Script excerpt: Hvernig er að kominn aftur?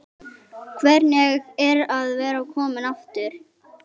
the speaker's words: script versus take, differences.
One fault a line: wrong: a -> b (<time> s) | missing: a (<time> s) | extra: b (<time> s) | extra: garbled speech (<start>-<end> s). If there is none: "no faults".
extra: vera (2.2 s)